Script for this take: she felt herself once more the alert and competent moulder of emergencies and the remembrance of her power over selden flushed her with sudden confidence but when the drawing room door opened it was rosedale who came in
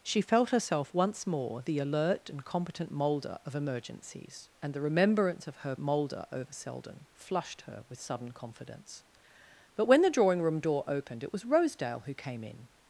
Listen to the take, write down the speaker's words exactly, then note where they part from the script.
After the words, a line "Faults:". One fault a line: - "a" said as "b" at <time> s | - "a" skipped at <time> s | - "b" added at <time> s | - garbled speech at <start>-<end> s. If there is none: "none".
she felt herself once more the alert and competent moulder of emergencies and the remembrance of her moulder over selden flushed her with sudden confidence but when the drawing room door opened it was rosedale who came in
Faults:
- "power" said as "moulder" at 5.8 s